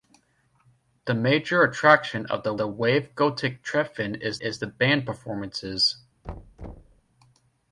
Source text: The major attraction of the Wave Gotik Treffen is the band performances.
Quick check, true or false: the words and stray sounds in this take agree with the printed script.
false